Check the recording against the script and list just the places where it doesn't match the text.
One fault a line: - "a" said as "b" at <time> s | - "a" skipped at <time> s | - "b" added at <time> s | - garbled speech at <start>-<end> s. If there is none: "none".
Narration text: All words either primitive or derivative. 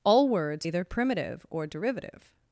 none